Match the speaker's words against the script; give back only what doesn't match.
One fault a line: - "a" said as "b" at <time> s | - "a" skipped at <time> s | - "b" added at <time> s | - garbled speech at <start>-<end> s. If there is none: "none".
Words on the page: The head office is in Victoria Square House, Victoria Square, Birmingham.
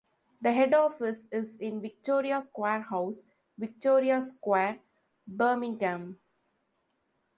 none